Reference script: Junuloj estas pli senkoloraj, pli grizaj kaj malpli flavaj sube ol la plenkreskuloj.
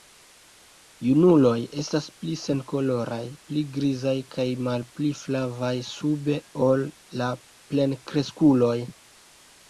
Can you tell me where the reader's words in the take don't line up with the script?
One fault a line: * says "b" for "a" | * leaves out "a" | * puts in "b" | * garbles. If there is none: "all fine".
all fine